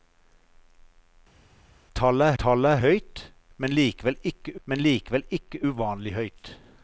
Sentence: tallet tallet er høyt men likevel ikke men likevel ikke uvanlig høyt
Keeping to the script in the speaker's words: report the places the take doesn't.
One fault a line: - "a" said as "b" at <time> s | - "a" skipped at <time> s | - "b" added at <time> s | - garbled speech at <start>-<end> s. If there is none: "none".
none